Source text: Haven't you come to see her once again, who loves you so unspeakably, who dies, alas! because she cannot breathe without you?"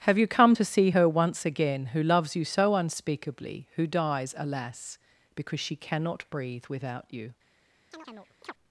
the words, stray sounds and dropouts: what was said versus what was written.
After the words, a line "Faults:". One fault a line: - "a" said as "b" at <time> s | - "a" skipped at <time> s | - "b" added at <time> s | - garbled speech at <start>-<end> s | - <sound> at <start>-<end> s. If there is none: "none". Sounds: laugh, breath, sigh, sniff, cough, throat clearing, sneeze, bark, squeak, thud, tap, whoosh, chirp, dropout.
Have you come to see her once again, who loves you so unspeakably, who dies, alas! because she cannot breathe without you?"
Faults:
- "Haven't" said as "Have" at 0.1 s
- chirp at 7.9-8.5 s